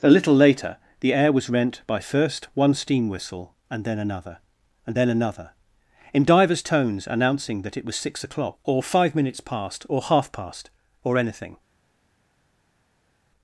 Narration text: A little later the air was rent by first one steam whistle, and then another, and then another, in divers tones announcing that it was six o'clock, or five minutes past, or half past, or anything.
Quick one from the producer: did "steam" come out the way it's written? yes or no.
yes